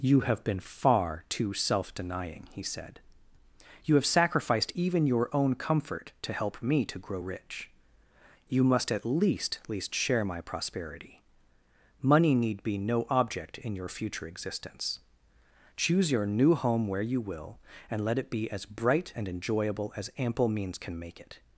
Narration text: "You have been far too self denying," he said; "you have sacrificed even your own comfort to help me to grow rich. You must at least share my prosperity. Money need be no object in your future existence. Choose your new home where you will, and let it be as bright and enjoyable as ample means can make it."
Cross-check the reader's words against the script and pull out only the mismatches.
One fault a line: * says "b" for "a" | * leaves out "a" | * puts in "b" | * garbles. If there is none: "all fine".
* puts in "least"